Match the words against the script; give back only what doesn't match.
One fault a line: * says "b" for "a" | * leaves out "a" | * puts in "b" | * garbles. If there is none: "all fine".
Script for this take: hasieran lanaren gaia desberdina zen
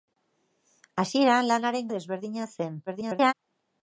* leaves out "gaia"
* garbles